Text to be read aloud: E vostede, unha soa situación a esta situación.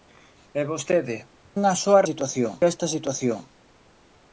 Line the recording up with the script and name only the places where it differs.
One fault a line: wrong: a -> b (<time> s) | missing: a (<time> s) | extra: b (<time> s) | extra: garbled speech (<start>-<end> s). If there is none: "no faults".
no faults